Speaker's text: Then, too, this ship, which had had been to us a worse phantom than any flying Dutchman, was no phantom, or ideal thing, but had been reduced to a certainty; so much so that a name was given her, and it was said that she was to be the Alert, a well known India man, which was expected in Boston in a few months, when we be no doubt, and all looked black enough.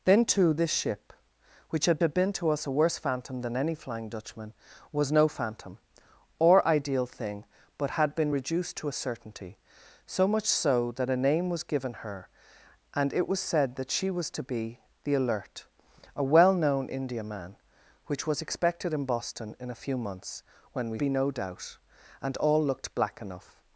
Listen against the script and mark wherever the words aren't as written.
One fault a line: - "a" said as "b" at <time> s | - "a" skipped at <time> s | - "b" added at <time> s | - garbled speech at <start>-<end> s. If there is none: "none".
none